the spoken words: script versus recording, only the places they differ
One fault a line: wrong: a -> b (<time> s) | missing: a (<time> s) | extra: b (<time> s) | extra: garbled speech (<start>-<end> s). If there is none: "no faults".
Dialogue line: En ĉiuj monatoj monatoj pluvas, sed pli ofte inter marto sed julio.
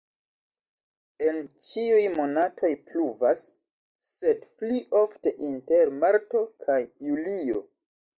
missing: monatoj (2.7 s)
wrong: sed -> kaj (6.7 s)